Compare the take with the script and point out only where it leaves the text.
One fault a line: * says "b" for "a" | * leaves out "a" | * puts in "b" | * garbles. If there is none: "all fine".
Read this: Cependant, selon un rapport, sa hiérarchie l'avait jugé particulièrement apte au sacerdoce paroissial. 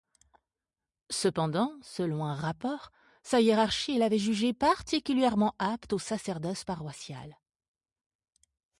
all fine